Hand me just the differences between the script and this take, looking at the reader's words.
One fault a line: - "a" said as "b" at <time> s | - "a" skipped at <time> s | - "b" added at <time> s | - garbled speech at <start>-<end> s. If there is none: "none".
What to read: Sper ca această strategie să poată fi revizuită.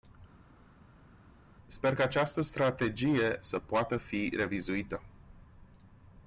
none